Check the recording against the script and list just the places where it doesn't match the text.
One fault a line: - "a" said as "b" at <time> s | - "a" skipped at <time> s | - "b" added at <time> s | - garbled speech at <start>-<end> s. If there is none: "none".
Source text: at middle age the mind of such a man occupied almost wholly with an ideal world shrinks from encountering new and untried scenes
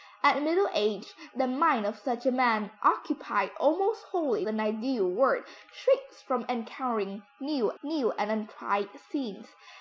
- "with" skipped at 4.5 s
- "new" added at 7.8 s